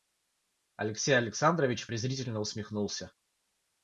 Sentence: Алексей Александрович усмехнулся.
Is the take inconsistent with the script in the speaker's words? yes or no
yes